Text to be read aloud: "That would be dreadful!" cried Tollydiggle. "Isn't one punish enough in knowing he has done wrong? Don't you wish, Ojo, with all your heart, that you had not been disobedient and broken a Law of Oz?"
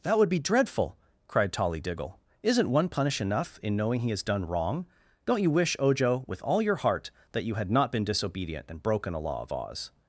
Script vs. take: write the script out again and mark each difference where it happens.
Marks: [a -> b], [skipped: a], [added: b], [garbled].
"That would be dreadful!" cried Tollydiggle. "Isn't one punish enough in knowing he has done wrong? Don't you wish, Ojo, with all your heart, that you had not been disobedient and broken a Law of Oz?"